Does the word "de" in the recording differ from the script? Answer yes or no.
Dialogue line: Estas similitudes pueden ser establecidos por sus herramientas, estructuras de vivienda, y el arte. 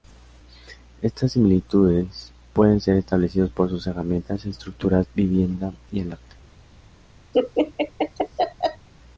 yes